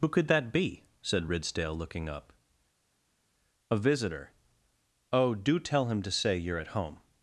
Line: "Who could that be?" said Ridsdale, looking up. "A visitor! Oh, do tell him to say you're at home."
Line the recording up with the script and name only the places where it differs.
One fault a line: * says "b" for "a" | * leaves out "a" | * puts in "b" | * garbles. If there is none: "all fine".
all fine